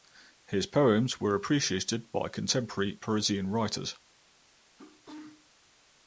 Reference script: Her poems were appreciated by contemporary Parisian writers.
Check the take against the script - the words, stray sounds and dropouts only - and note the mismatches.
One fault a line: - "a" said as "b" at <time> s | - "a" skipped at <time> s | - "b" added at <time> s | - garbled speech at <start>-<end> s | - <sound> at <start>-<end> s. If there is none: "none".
- "Her" said as "His" at 0.5 s
- sneeze at 4.8-5.5 s